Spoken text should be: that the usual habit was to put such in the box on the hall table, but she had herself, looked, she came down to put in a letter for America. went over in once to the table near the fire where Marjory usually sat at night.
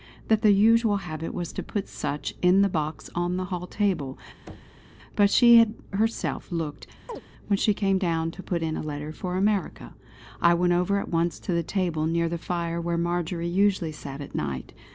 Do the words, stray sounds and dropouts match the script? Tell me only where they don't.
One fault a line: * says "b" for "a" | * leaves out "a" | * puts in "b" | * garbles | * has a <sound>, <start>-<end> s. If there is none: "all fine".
* has a thud, 4.5-4.8 s
* has a chirp, 7.1-7.2 s
* puts in "when"
* puts in "I"
* says "at" for "in"